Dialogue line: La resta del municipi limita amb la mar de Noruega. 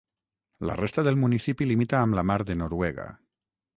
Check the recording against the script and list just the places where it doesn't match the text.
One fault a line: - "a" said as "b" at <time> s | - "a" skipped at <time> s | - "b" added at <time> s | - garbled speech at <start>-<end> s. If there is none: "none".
none